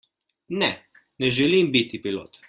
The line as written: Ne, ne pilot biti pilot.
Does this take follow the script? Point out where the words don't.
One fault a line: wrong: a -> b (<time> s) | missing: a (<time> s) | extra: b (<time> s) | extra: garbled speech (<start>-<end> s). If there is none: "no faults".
wrong: pilot -> želim (1.3 s)